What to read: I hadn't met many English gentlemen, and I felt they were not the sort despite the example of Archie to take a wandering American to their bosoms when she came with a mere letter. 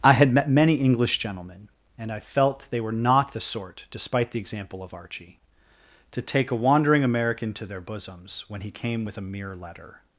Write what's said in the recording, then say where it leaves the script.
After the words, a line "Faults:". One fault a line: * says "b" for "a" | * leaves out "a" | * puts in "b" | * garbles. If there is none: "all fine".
I had met many English gentlemen, and I felt they were not the sort despite the example of Archie to take a wandering American to their bosoms when he came with a mere letter.
Faults:
* says "had" for "hadn't"
* says "he" for "she"